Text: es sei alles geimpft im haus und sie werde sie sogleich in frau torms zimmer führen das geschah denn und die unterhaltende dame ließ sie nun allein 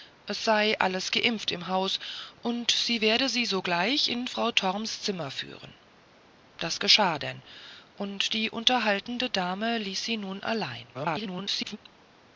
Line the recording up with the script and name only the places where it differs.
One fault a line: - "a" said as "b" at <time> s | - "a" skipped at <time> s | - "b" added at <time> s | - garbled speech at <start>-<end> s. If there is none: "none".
- garbled speech at 10.9-11.8 s